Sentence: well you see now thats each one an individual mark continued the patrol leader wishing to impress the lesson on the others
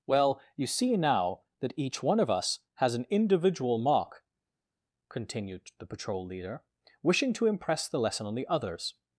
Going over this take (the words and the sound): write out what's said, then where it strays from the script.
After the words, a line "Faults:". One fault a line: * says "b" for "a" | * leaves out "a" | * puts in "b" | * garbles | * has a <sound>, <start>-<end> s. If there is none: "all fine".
well you see now that each one of us has an individual mark continued the patrol leader wishing to impress the lesson on the others
Faults:
* says "that" for "thats"
* puts in "of us has"